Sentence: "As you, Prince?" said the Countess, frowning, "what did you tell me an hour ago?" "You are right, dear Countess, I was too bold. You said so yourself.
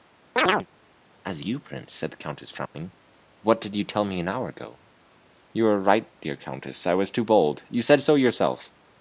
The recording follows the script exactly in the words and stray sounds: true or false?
false